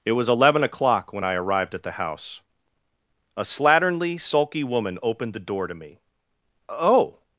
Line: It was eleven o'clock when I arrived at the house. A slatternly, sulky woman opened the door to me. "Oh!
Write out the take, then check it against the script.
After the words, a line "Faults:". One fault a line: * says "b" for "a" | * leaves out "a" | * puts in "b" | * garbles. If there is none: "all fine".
It was eleven o'clock when I arrived at the house. A slatternly, sulky woman opened the door to me. "Oh!
Faults:
all fine